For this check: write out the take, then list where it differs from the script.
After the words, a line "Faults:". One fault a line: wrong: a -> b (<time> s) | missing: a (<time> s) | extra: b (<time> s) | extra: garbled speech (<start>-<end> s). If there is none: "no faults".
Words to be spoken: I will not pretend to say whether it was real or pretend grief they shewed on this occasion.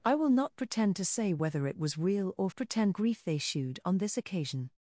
I will not pretend to say whether it was real or pretend grief they shewed on this occasion.
Faults:
no faults